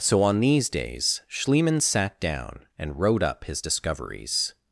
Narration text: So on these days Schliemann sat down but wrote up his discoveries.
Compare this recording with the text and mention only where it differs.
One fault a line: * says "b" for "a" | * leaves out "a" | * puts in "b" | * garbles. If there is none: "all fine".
* says "and" for "but"